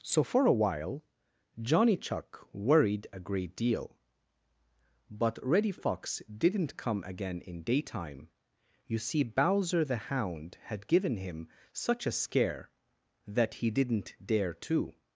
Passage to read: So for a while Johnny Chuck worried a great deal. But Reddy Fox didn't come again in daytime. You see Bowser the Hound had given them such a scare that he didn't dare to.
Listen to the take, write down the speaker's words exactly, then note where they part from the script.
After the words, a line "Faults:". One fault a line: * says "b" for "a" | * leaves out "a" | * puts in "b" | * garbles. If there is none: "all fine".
So for a while Johnny Chuck worried a great deal. But Reddy Fox didn't come again in daytime. You see Bowser the Hound had given him such a scare that he didn't dare to.
Faults:
* says "him" for "them"